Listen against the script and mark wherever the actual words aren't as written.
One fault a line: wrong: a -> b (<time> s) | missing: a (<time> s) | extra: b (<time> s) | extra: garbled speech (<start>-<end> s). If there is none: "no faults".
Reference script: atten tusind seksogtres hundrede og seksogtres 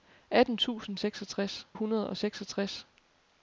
no faults